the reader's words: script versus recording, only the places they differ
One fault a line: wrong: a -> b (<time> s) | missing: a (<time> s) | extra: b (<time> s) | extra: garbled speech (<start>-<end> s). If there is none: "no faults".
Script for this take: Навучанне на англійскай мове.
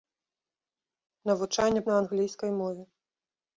no faults